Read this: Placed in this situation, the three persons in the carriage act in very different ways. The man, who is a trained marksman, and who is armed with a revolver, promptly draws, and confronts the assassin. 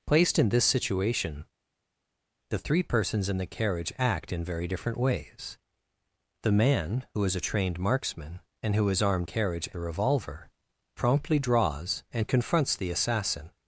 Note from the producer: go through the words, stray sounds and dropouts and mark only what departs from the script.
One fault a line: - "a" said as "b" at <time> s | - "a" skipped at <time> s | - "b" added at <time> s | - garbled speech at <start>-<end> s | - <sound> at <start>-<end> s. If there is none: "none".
- "with" said as "carriage" at 9.2 s